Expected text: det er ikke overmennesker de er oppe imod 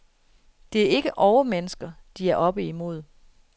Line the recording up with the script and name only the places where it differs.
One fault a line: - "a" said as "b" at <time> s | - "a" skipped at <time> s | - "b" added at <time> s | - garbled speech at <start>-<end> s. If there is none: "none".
none